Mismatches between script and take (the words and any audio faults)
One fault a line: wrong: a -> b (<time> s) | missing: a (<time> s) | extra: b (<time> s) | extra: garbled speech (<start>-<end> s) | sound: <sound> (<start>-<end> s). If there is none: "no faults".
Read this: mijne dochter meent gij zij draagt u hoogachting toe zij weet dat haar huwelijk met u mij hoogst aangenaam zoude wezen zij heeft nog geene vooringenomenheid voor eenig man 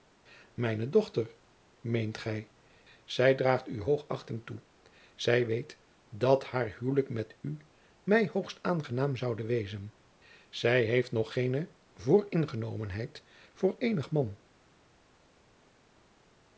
no faults